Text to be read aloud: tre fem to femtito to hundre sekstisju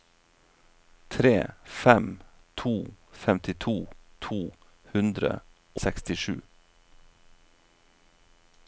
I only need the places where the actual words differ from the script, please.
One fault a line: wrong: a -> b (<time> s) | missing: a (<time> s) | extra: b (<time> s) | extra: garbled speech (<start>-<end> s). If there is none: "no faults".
no faults